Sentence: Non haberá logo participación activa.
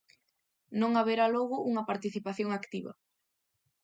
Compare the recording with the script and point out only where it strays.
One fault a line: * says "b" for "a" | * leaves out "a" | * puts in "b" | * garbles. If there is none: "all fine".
* puts in "unha"